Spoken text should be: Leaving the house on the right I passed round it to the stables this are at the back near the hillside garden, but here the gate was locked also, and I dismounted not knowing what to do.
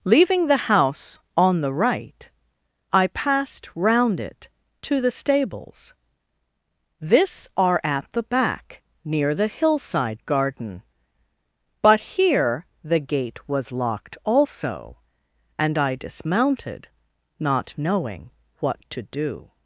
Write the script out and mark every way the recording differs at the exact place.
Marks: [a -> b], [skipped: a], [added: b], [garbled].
Leaving the house on the right I passed round it to the stables this are at the back near the hillside garden, but here the gate was locked also, and I dismounted not knowing what to do.